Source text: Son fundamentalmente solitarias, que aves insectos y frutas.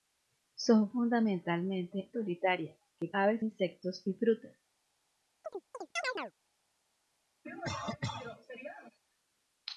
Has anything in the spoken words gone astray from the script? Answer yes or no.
no